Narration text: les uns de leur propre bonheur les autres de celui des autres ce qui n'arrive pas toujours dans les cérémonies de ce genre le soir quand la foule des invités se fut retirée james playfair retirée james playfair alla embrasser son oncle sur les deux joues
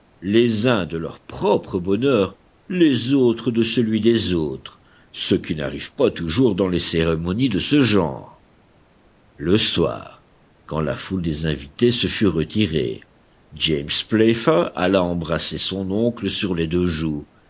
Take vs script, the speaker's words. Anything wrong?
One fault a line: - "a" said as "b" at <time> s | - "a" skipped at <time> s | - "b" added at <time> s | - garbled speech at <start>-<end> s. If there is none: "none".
- "retirée james playfair" skipped at 14.7 s